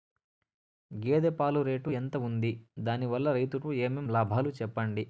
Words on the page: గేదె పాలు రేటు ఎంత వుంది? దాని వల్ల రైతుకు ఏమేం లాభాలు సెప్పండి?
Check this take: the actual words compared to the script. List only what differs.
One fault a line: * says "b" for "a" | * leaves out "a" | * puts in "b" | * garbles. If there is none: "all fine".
all fine